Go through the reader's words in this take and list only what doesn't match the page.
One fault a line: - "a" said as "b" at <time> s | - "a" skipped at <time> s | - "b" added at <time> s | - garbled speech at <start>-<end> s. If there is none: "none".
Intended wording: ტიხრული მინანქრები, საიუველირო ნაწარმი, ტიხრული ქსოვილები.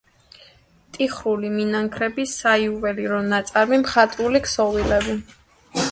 - "ტიხრული" said as "მხატვრული" at 3.9 s